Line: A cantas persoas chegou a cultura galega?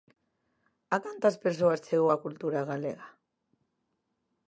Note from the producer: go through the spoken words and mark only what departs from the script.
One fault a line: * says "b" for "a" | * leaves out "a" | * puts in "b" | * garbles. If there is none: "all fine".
all fine